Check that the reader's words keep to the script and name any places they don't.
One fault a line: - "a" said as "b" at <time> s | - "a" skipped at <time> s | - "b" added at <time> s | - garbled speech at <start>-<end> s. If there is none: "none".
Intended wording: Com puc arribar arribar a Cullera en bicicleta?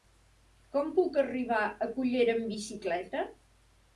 - "arribar" skipped at 1.6 s
- "en" said as "amb" at 2.4 s